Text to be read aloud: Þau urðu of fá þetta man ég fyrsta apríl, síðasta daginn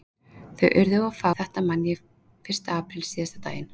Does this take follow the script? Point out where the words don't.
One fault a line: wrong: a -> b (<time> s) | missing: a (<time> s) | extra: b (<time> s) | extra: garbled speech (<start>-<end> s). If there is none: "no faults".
no faults